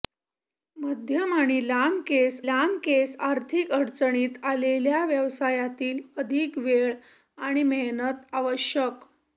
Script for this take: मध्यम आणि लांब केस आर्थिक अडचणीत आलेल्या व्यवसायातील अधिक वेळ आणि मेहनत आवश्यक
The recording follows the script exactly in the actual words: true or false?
false